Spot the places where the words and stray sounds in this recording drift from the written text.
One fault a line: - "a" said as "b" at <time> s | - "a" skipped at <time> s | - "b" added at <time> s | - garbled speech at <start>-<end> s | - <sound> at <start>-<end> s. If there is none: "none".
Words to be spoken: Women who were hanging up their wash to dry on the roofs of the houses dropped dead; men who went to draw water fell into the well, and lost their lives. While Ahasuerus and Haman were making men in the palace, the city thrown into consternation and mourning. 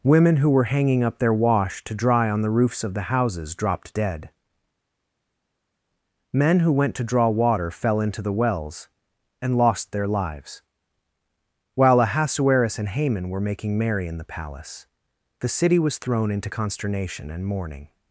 - "well" said as "wells" at 8.3 s
- "men" said as "merry" at 13.8 s
- "was" added at 15.8 s